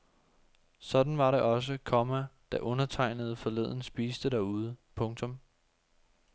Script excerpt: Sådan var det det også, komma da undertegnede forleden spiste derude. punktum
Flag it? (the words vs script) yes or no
yes